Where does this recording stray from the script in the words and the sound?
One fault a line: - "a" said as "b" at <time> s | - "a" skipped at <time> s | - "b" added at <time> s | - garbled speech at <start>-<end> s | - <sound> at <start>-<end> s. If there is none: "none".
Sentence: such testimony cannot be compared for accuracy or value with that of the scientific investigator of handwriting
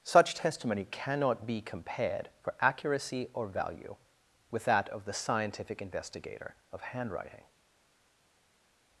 none